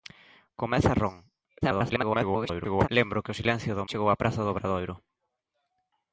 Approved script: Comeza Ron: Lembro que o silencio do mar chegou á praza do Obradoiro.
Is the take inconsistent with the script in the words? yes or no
yes